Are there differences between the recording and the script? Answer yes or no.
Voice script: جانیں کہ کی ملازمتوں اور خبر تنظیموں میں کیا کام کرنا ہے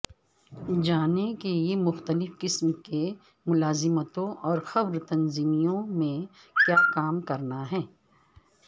yes